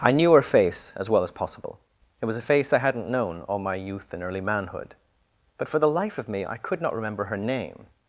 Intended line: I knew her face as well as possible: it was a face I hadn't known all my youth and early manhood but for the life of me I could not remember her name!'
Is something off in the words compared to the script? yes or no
no